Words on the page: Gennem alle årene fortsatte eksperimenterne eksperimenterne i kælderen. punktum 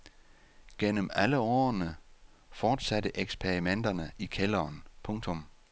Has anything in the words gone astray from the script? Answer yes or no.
yes